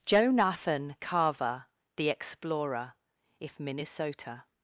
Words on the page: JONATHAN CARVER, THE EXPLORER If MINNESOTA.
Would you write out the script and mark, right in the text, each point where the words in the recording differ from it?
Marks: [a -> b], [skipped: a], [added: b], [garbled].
JONATHAN CARVER, THE EXPLORER If MINNESOTA.